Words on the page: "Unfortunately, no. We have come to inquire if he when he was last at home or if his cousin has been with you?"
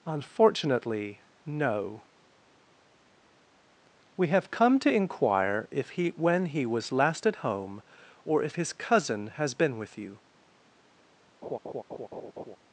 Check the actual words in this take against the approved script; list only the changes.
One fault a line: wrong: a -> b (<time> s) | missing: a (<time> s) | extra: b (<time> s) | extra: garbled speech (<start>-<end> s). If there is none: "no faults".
no faults